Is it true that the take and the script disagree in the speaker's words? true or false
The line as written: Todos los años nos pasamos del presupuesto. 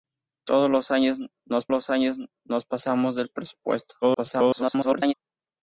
true